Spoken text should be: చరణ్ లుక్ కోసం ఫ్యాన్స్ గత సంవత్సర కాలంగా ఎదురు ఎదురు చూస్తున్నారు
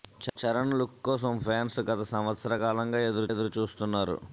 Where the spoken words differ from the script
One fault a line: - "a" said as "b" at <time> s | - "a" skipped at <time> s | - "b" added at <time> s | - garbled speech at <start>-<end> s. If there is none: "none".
none